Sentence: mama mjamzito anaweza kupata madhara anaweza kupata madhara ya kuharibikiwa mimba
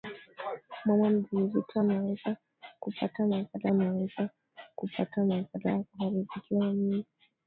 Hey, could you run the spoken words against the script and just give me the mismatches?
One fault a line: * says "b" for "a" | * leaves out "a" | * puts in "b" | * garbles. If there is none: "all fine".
all fine